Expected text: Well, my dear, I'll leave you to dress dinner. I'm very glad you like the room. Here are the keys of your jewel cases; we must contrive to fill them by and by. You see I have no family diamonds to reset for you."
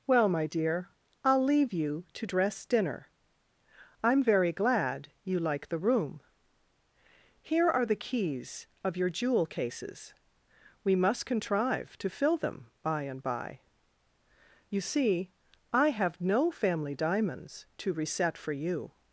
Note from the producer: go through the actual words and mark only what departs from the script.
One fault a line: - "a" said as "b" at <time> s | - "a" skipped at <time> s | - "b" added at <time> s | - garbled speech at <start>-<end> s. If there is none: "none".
none